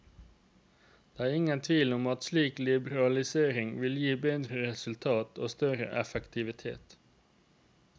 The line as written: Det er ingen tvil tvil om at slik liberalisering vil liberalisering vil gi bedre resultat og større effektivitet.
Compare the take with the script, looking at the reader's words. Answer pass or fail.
fail